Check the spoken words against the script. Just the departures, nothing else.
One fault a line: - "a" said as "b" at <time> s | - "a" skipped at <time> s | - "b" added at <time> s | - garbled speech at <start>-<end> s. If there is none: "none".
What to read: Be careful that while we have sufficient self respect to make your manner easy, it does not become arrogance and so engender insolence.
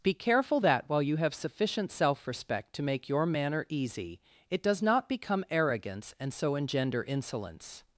- "we" said as "you" at 1.0 s